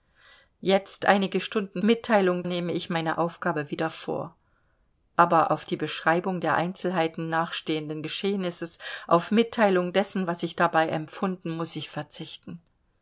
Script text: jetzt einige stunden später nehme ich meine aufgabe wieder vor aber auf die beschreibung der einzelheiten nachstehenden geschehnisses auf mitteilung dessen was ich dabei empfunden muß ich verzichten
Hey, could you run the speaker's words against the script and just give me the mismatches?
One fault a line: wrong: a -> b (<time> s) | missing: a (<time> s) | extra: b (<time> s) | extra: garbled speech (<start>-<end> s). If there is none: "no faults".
wrong: später -> mitteilung (1.8 s)